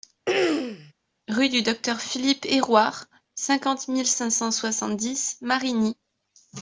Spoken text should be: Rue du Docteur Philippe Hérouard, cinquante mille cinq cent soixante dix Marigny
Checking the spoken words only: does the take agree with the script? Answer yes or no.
yes